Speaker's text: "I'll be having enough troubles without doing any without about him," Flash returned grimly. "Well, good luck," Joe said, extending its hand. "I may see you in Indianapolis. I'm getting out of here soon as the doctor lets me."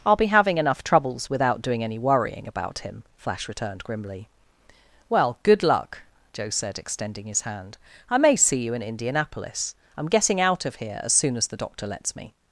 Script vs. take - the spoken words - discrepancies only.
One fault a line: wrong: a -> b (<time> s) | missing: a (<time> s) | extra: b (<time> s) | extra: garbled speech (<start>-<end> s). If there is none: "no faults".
wrong: without -> worrying (2.0 s)
wrong: its -> his (7.3 s)
extra: as (11.0 s)